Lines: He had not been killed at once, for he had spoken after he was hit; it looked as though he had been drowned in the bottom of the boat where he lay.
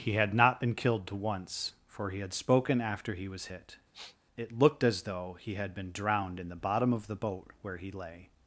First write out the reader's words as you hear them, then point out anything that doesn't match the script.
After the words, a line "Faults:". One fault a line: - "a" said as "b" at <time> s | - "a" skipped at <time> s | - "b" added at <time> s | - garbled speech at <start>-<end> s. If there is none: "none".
He had not been killed to once, for he had spoken after he was hit; it looked as though he had been drowned in the bottom of the boat where he lay.
Faults:
- "at" said as "to" at 1.1 s